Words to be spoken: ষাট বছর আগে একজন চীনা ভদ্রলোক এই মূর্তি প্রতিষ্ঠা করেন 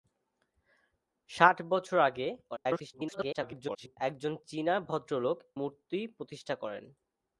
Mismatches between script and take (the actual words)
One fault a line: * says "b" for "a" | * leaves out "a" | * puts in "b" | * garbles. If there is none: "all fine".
* garbles
* leaves out "এই"